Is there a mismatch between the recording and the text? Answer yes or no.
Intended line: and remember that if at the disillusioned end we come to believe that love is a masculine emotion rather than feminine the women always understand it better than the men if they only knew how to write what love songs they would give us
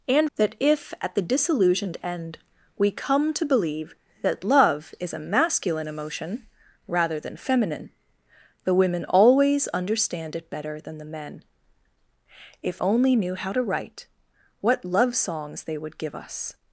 yes